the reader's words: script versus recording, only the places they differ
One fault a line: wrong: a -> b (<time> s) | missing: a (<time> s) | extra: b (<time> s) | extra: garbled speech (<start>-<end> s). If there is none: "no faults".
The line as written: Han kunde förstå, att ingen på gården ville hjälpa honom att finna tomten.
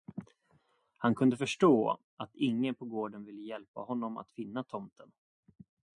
no faults